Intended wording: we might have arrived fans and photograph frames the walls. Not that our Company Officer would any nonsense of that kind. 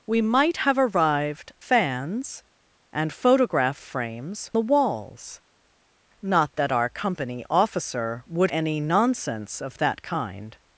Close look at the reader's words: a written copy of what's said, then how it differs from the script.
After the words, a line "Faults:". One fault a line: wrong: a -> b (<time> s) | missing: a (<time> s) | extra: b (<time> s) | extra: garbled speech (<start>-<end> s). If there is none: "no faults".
we might have arrived fans and photograph frames the walls. Not that our Company Officer would any nonsense of that kind.
Faults:
no faults